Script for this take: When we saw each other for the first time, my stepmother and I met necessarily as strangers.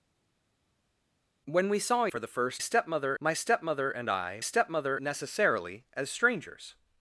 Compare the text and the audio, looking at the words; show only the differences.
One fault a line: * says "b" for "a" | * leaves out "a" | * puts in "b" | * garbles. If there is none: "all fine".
* leaves out "each other"
* says "stepmother" for "time"
* says "stepmother" for "met"